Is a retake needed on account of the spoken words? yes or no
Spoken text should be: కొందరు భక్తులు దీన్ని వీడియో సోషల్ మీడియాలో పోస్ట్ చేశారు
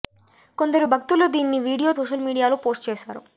no